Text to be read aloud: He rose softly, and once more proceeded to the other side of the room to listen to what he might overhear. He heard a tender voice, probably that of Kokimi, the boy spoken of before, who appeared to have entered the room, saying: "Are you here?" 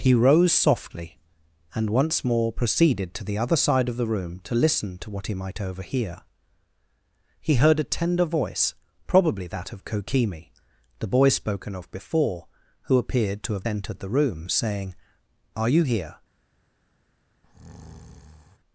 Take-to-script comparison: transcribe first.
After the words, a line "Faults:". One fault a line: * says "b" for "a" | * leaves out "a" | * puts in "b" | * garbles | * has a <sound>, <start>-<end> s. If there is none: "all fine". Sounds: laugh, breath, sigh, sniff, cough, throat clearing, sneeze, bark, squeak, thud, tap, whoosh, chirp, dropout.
He rose softly, and once more proceeded to the other side of the room to listen to what he might overhear. He heard a tender voice, probably that of Kokimi, the boy spoken of before, who appeared to have entered the room, saying: "Are you here?"
Faults:
* has a breath, 17.4-18.6 s